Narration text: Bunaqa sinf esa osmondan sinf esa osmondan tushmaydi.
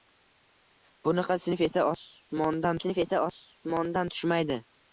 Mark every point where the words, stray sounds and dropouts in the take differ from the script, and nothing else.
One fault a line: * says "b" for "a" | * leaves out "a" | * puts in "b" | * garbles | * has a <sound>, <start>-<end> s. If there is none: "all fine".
all fine